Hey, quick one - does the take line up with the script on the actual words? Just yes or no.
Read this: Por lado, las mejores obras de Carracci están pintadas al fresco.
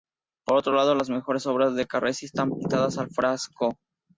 no